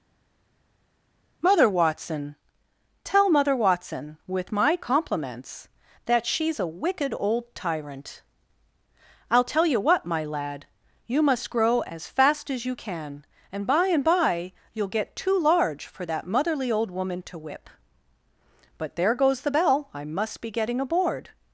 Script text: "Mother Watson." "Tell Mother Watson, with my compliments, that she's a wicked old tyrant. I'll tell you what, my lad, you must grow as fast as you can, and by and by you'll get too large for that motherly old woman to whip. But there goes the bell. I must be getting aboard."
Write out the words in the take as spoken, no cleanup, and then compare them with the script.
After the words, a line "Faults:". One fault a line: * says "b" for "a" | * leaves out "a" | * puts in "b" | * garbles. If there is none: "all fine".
"Mother Watson." "Tell Mother Watson, with my compliments, that she's a wicked old tyrant. I'll tell you what, my lad, you must grow as fast as you can, and by and by you'll get too large for that motherly old woman to whip. But there goes the bell. I must be getting aboard."
Faults:
all fine